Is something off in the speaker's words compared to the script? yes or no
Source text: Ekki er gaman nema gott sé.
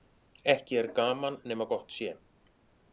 no